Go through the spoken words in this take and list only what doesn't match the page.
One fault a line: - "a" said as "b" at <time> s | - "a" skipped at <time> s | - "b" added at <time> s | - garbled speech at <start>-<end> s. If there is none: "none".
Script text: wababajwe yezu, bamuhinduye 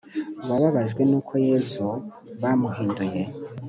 - "n'uko" added at 1.1 s